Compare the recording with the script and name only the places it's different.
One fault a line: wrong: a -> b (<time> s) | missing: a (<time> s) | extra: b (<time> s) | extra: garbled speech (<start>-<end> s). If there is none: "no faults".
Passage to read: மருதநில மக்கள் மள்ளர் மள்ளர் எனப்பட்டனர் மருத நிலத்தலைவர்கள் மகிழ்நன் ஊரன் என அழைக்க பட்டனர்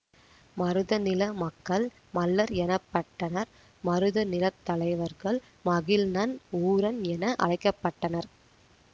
missing: மள்ளர் (2.5 s)